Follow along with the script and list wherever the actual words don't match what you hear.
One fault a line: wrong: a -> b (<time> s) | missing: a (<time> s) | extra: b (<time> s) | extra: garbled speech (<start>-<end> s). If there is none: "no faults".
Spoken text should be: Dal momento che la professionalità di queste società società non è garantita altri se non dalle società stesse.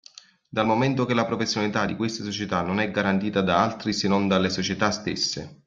missing: società (2.6 s)
extra: da (3.4 s)